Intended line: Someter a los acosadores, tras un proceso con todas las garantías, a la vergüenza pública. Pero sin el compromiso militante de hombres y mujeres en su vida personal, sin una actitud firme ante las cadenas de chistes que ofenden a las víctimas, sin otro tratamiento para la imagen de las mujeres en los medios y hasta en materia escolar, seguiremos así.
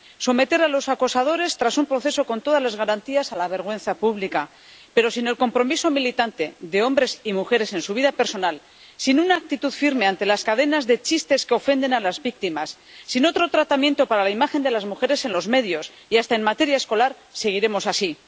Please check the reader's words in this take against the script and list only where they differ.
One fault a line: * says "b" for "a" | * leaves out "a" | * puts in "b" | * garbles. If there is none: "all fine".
all fine